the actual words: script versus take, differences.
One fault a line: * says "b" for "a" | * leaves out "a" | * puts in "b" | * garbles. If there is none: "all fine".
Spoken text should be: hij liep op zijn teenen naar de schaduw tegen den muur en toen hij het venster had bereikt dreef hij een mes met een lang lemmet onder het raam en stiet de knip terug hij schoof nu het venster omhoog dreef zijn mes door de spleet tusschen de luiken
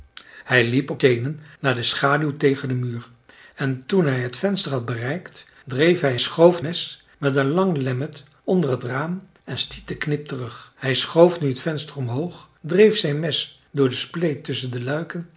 * leaves out "zijn"
* says "schoof" for "een"